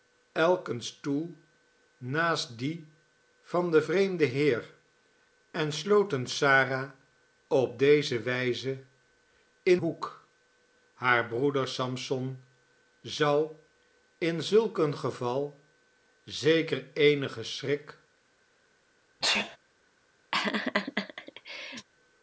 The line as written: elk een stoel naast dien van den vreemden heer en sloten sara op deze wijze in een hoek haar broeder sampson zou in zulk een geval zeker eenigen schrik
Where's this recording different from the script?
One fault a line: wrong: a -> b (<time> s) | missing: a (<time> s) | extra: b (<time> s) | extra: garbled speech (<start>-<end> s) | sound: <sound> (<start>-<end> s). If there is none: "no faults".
missing: een (9.8 s)
sound: sneeze (19.2-19.6 s)
sound: laugh (20.3-21.9 s)